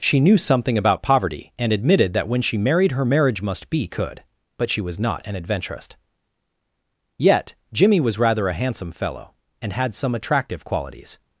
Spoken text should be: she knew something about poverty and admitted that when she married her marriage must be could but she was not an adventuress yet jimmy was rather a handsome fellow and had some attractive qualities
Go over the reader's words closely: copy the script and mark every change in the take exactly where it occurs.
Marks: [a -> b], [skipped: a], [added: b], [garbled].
she knew something about poverty and admitted that when she married her marriage must be could but she was not an adventuress yet jimmy was rather a handsome fellow and had some attractive qualities